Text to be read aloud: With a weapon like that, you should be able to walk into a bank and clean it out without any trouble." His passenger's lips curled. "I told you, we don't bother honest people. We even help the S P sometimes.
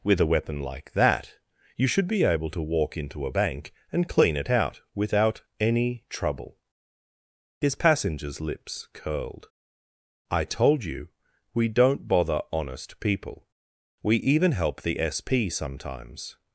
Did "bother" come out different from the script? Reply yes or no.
no